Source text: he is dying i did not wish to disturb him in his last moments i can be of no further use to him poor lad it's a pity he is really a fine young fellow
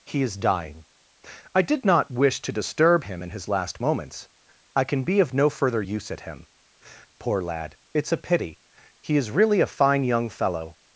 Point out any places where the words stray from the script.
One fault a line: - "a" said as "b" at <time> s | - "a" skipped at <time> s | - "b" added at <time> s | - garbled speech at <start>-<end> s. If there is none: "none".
- "to" said as "at" at 6.1 s